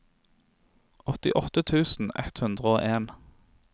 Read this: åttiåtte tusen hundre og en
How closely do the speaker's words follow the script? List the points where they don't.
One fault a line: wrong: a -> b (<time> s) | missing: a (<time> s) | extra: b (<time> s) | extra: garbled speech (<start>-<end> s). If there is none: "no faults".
extra: ett (2.2 s)